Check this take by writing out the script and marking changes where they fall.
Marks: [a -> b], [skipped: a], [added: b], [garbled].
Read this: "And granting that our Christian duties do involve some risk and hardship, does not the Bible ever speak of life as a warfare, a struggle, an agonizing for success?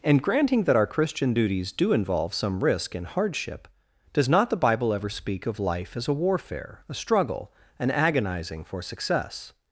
"And granting that our Christian duties do involve some risk and hardship, does not the Bible ever speak of life as a warfare, a struggle, an agonizing for success?